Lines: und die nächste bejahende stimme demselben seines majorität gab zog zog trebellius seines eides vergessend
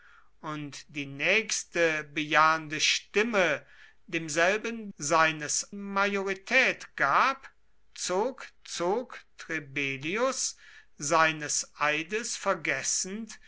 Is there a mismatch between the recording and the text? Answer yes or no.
no